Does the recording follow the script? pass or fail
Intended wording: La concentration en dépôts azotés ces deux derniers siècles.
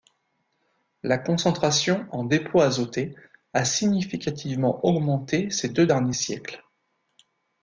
fail